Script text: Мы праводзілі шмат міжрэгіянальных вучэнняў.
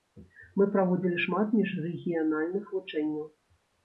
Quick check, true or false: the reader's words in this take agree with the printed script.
true